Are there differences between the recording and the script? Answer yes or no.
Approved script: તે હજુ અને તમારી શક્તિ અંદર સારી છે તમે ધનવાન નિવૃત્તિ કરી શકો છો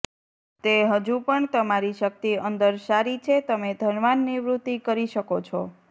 yes